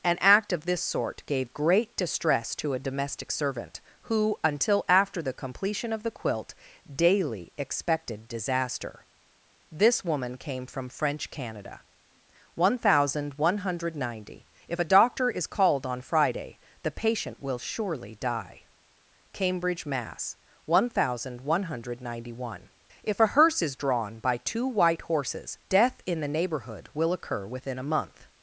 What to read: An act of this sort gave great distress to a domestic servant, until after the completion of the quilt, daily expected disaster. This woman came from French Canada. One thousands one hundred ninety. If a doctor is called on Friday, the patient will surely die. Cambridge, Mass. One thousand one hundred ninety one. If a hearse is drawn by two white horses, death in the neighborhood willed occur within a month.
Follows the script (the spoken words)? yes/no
no